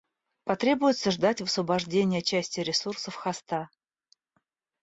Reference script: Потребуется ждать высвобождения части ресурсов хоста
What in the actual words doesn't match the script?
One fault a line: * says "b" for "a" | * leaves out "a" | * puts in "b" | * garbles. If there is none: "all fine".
all fine